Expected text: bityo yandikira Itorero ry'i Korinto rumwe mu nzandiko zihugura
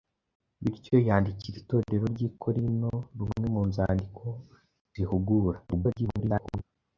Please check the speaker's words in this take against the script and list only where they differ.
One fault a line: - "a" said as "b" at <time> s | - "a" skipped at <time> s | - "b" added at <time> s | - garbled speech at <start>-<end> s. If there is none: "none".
- garbled speech at 5.7-6.6 s